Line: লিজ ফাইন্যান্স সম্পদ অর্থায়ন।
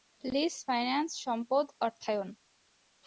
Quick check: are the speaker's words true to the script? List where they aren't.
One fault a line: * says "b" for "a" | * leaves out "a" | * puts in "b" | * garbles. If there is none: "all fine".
all fine